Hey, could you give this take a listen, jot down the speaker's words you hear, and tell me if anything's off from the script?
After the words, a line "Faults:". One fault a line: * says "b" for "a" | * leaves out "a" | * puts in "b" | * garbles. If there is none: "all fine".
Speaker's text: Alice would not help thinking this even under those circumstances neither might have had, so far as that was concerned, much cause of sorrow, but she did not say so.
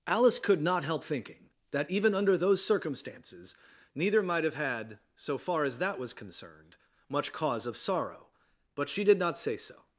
Alice could not help thinking that even under those circumstances neither might have had, so far as that was concerned, much cause of sorrow, but she did not say so.
Faults:
* says "could" for "would"
* says "that" for "this"